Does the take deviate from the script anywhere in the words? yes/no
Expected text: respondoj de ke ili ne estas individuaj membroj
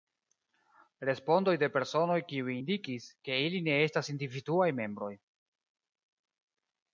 yes